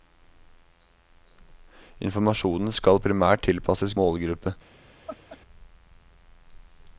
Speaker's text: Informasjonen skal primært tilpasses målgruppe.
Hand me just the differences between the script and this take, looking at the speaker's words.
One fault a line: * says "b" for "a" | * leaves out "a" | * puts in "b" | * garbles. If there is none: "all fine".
all fine